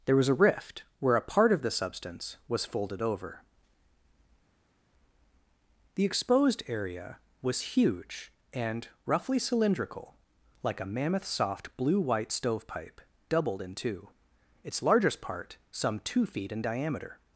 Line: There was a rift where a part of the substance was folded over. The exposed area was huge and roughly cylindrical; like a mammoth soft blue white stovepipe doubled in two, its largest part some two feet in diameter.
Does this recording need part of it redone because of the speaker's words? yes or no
no